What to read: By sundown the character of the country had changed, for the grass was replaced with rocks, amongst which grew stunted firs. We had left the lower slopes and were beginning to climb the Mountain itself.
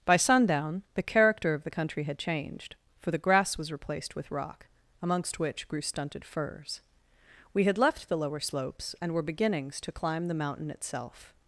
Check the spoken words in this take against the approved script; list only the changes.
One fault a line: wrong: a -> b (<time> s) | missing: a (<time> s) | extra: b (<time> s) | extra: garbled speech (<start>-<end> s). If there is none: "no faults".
wrong: rocks -> rock (4.3 s)
wrong: beginning -> beginnings (9.2 s)